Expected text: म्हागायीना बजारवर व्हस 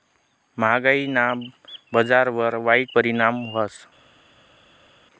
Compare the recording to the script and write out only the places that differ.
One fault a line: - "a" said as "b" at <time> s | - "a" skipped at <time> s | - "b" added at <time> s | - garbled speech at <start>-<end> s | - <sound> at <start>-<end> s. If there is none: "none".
- "वाईट परिणाम" added at 2.6 s